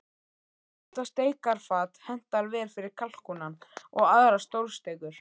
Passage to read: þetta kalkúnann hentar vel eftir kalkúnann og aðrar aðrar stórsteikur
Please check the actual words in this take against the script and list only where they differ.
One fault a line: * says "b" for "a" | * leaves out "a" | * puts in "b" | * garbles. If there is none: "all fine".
* says "steikarfat" for "kalkúnann"
* says "fyrir" for "eftir"
* leaves out "aðrar"